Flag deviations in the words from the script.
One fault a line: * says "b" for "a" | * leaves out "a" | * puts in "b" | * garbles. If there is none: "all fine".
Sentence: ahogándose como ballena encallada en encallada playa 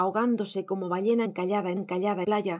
all fine